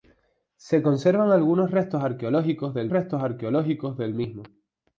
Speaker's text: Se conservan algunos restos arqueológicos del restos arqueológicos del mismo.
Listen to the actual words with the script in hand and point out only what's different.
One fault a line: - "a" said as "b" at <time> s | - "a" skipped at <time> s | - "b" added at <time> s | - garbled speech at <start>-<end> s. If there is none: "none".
none